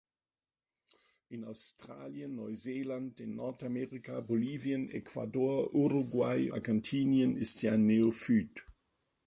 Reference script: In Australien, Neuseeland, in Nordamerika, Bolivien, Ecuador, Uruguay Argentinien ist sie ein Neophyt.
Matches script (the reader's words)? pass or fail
pass